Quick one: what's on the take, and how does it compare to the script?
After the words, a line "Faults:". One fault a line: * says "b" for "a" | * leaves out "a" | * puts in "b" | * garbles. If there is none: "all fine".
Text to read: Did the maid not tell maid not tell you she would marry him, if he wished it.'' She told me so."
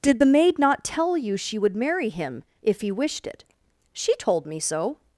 Did the maid not tell you she would marry him, if he wished it.'' She told me so."
Faults:
* leaves out "maid not tell"